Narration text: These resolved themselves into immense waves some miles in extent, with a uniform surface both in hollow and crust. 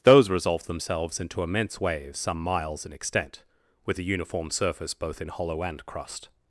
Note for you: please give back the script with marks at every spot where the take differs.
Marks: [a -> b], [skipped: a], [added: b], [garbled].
[These -> Those] resolved themselves into immense waves some miles in extent, with a uniform surface both in hollow and crust.